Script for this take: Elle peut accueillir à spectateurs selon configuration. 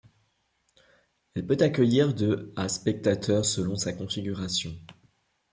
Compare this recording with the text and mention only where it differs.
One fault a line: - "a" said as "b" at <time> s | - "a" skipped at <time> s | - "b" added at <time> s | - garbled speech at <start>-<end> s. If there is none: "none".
- "de" added at 2.1 s
- "sa" added at 3.7 s